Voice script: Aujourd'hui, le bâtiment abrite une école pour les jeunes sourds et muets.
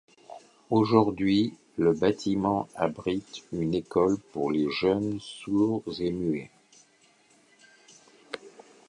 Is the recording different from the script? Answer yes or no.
no